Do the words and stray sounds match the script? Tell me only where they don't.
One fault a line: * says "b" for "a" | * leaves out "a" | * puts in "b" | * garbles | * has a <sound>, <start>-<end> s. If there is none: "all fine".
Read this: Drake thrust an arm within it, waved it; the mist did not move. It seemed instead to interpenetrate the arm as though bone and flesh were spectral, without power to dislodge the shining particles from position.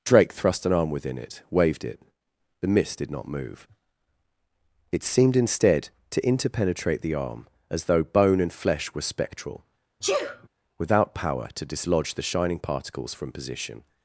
* has a sneeze, 10.0-10.5 s